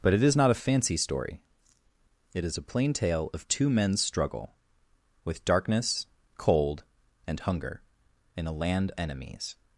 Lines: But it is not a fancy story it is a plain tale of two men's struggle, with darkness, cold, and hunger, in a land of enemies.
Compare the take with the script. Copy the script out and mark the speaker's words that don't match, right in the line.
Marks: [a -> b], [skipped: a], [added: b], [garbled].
But it is not a fancy story it is a plain tale of two men's struggle, with darkness, cold, and hunger, in a land [skipped: of] enemies.